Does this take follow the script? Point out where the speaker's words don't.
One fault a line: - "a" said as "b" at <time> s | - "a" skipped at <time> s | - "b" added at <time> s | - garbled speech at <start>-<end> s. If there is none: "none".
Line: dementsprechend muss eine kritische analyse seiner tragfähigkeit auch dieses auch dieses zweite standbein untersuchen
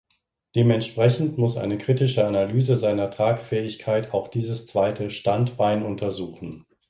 - "auch dieses" skipped at 4.7 s